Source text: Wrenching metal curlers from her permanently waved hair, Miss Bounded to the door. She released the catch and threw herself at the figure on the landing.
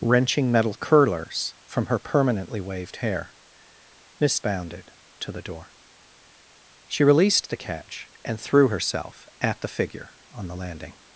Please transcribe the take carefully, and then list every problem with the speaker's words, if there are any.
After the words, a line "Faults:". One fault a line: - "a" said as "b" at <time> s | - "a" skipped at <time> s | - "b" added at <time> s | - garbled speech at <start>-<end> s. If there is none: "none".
Wrenching metal curlers from her permanently waved hair, Miss Bounded to the door. She released the catch and threw herself at the figure on the landing.
Faults:
none